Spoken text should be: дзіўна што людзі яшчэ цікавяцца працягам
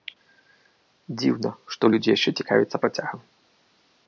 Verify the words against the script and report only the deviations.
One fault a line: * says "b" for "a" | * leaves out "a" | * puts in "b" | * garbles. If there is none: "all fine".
all fine